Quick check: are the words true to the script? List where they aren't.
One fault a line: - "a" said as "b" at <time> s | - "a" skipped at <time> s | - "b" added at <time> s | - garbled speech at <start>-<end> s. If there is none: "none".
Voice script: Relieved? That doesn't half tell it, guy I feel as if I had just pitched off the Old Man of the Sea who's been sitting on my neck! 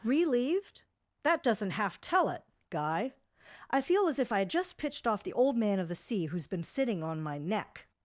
none